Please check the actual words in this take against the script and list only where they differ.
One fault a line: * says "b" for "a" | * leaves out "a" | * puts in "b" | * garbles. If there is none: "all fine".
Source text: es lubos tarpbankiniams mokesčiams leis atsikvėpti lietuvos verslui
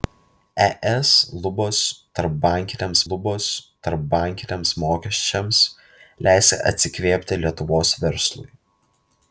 * puts in "lubos tarpbankiniams"